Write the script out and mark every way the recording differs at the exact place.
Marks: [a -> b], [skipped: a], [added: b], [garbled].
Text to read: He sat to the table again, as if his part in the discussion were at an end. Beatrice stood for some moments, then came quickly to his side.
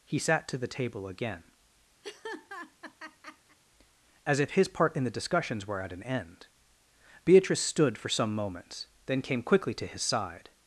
He sat to the table again, as if his part in the [discussion -> discussions] were at an end. Beatrice stood for some moments, then came quickly to his side.